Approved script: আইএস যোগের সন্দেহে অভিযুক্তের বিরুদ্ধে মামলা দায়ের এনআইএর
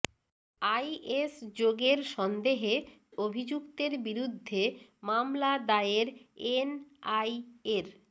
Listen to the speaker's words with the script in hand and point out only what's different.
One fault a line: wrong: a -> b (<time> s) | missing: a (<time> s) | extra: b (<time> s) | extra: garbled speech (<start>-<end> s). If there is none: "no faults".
no faults